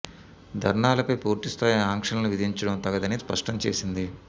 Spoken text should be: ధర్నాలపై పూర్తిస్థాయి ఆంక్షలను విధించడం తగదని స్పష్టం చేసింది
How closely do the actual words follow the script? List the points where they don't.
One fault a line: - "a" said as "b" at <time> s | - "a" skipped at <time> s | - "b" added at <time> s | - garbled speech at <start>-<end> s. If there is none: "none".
none